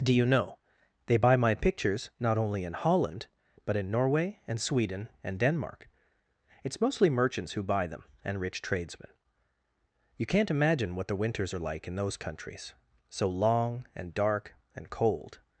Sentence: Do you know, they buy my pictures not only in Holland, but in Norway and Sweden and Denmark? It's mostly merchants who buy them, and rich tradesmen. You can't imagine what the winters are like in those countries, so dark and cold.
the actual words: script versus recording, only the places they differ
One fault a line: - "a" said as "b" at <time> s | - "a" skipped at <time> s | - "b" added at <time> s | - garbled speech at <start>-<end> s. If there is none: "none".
- "long and" added at 13.3 s